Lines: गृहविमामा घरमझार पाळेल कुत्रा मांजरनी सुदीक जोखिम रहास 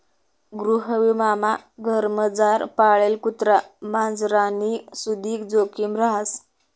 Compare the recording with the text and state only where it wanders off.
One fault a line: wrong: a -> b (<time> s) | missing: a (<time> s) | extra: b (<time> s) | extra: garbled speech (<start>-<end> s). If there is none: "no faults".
no faults